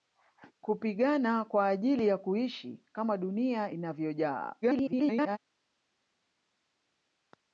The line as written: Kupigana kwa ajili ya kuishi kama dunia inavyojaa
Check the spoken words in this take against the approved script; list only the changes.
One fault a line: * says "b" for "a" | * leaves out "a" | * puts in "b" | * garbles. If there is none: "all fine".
* garbles